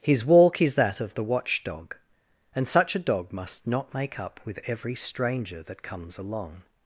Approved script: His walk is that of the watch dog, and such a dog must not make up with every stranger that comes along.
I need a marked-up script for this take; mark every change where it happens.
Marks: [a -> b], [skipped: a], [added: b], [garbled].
His walk is that of the watch dog, and such a dog must not make up with every stranger that comes along.